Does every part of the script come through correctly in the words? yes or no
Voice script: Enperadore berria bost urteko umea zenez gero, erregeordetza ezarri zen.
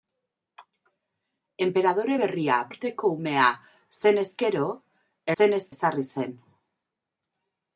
no